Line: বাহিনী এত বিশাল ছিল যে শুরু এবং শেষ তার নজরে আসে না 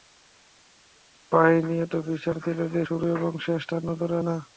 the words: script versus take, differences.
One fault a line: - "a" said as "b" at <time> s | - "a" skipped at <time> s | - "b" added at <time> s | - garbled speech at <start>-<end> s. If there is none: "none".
- "আসে" skipped at 4.1 s